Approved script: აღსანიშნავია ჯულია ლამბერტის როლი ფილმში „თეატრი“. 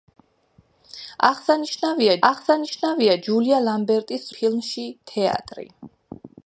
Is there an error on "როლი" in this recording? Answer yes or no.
yes